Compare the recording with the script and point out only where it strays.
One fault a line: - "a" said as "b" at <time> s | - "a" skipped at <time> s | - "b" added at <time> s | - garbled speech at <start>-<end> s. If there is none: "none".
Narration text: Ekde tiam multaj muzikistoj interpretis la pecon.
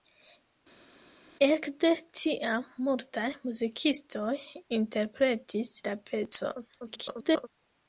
- garbled speech at 6.8-7.5 s